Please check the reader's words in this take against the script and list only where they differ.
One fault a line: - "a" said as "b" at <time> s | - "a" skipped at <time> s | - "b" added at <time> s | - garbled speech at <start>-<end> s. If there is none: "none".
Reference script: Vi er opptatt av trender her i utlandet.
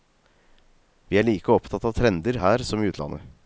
- "like" added at 1.3 s
- "som" added at 2.6 s